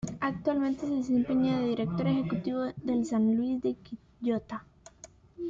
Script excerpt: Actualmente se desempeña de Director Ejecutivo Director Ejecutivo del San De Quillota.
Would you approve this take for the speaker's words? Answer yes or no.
no